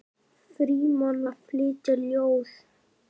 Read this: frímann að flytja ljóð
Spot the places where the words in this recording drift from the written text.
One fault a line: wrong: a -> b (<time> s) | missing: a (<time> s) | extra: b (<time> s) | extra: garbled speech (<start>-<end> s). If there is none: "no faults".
no faults